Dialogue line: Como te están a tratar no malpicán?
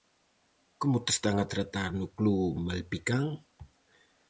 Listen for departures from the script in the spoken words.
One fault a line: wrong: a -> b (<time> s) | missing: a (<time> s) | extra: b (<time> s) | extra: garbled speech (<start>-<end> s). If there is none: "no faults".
extra: club (2.1 s)